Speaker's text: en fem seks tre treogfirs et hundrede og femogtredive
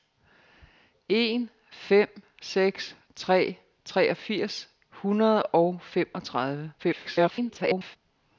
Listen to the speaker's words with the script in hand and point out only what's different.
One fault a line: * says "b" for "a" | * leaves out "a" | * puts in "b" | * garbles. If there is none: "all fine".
* leaves out "et"
* garbles